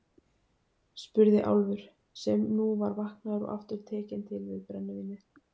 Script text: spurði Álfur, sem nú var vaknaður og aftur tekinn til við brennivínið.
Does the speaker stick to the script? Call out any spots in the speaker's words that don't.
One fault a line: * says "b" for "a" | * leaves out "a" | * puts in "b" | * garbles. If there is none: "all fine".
all fine